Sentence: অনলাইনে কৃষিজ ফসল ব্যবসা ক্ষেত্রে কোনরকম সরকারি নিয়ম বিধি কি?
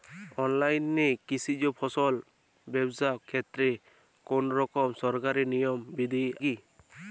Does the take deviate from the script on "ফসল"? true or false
false